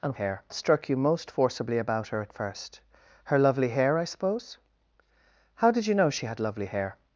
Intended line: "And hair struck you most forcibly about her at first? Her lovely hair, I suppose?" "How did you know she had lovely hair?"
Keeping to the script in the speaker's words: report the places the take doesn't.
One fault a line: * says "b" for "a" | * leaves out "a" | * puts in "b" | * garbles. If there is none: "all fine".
all fine